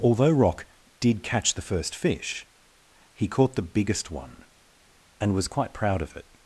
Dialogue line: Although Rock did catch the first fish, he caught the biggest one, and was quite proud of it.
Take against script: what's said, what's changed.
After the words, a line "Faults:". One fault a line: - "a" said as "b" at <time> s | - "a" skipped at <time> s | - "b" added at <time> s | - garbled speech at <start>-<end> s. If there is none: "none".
Although Rock did catch the first fish, he caught the biggest one, and was quite proud of it.
Faults:
none